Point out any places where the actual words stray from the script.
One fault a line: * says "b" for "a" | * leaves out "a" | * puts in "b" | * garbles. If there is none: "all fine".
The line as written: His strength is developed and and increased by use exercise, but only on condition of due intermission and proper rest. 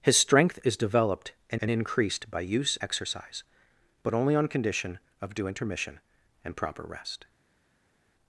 all fine